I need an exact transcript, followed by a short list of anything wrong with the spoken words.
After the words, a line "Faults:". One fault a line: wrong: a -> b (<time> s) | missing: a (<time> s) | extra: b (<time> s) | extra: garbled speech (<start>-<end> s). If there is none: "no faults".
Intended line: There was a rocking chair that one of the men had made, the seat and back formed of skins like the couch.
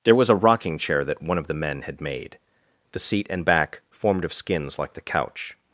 There was a rocking chair that one of the men had made, the seat and back formed of skins like the couch.
Faults:
no faults